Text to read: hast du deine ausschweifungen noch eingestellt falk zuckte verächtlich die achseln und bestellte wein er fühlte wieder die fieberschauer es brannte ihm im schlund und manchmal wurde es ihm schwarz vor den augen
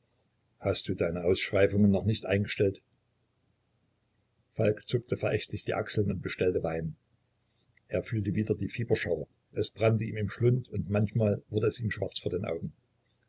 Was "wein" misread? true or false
false